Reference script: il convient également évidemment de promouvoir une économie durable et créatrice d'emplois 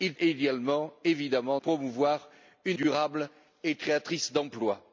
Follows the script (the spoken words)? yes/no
no